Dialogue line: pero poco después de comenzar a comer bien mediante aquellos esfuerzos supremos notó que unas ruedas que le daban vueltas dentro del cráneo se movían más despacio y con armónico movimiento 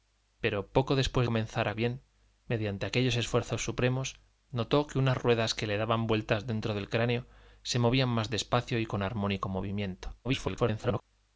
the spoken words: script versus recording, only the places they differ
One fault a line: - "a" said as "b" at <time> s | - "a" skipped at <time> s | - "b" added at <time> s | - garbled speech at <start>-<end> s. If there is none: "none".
- "de" skipped at 1.3 s
- "comer" skipped at 1.7 s
- garbled speech at 10.2-11.0 s